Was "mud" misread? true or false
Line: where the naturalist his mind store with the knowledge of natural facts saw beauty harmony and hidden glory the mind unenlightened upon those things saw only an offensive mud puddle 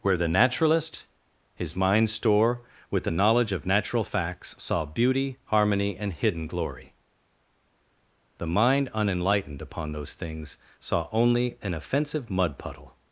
false